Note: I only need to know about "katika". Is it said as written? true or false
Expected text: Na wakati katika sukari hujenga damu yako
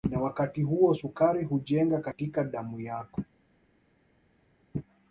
false